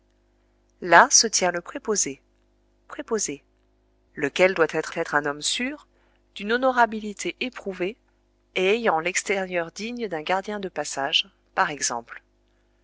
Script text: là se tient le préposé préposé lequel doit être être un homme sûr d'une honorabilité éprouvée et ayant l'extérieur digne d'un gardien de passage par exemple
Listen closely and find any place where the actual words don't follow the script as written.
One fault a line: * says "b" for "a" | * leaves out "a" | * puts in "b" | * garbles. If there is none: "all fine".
all fine